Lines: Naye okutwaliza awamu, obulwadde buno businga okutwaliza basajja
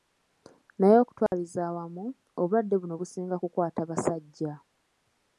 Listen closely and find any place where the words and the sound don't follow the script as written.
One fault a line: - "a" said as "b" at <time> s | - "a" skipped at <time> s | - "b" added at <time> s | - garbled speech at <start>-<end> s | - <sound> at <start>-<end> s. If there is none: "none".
- dropout at 1.3-1.3 s
- "okutwaliza" said as "kukwata" at 3.4 s